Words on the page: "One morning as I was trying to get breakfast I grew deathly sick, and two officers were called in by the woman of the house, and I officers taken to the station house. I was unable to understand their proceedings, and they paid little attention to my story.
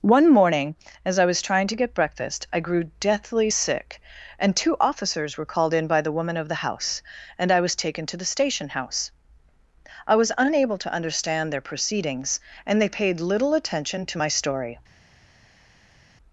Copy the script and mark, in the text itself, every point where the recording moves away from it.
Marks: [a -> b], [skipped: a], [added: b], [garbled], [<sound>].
"One morning as I was trying to get breakfast I grew deathly sick, and two officers were called in by the woman of the house, and I [officers -> was] taken to the station house. I was unable to understand their proceedings, and they paid little attention to my story.